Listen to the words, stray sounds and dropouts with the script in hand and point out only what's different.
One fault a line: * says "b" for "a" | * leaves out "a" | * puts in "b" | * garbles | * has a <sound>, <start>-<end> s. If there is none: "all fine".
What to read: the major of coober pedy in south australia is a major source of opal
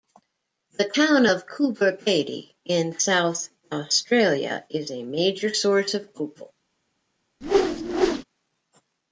* says "town" for "major"
* has a whoosh, 7.4-8.2 s